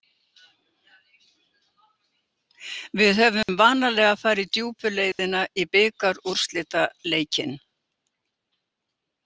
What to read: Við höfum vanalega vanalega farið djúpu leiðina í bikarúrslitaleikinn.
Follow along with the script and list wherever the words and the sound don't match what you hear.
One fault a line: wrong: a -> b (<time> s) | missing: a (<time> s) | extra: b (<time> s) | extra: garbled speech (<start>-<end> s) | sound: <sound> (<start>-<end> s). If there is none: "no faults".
sound: dropout (3.4-3.5 s)
missing: vanalega (4.2 s)
sound: dropout (5.1-5.2 s)